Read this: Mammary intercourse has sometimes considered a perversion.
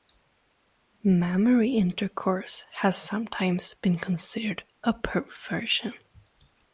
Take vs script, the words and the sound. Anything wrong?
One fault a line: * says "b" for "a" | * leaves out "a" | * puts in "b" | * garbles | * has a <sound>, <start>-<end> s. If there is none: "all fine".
* puts in "been"